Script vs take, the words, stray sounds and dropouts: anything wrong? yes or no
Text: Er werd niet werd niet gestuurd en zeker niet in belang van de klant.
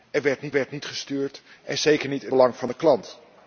no